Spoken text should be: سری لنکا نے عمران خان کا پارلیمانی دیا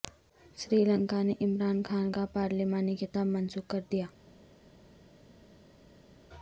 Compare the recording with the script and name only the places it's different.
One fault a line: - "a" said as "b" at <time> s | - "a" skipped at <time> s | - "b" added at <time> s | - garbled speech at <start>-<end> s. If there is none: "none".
- "خطاب منسوخ کر" added at 3.0 s